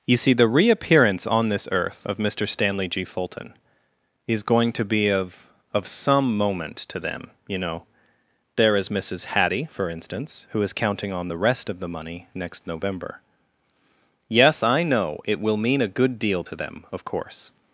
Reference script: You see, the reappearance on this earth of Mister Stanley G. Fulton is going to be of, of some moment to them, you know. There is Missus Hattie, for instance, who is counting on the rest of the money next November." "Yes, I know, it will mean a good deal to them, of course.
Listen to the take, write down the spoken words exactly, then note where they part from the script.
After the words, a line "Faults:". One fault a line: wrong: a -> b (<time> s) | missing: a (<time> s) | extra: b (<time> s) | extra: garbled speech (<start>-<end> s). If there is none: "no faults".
You see, the reappearance on this earth of Mister Stanley G. Fulton is going to be of, of some moment to them, you know. There is Missus Hattie, for instance, who is counting on the rest of the money next November." "Yes, I know, it will mean a good deal to them, of course.
Faults:
no faults